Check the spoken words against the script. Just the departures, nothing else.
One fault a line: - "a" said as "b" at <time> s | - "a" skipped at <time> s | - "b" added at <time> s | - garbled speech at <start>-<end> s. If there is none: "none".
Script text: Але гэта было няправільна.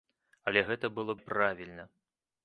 none